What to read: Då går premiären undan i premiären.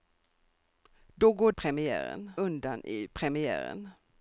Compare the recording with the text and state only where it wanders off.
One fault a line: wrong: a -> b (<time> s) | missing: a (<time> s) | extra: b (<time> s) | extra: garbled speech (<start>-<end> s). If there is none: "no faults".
no faults